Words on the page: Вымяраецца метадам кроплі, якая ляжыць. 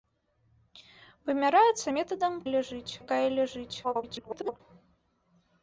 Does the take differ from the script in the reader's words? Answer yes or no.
yes